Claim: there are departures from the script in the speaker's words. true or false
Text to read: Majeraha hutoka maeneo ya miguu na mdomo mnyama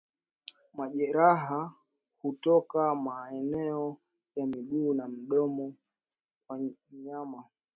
true